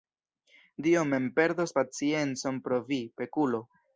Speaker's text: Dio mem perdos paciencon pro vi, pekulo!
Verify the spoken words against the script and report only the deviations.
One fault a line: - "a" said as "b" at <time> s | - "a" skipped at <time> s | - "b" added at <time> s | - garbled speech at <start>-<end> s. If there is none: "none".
none